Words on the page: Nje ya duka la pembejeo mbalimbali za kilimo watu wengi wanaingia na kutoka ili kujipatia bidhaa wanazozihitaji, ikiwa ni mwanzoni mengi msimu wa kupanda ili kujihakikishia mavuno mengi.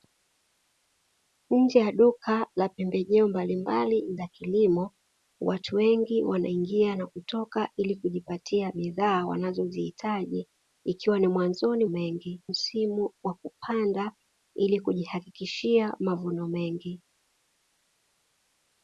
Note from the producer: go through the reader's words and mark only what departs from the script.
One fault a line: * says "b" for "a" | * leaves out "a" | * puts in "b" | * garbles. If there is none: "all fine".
all fine